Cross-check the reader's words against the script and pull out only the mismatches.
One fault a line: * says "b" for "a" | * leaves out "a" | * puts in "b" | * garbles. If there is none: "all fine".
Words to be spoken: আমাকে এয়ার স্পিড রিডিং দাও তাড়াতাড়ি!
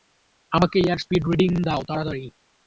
all fine